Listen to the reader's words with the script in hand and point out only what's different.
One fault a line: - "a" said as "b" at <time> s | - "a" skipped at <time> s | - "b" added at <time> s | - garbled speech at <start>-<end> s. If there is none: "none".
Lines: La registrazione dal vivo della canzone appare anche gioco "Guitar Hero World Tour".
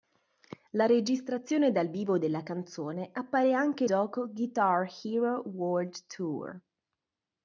none